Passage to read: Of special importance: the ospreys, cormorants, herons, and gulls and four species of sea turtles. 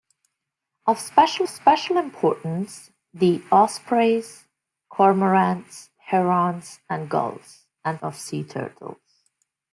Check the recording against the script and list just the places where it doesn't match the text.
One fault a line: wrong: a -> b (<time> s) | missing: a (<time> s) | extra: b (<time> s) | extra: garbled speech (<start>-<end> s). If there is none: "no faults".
extra: special (1.5 s)
missing: four species (8.0 s)